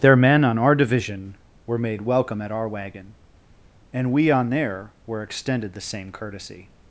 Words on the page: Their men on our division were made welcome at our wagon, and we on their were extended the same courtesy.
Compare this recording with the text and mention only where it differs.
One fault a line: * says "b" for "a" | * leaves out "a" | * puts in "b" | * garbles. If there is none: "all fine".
all fine